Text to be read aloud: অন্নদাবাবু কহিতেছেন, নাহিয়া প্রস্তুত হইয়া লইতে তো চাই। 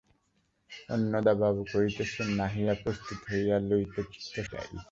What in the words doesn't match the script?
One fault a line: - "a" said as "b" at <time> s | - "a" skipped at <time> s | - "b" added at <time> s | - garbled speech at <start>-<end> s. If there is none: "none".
none